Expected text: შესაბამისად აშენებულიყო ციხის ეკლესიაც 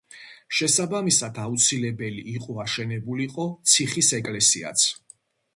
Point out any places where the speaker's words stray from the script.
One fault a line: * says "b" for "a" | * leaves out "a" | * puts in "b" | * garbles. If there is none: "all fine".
* puts in "აუცილებელი იყო"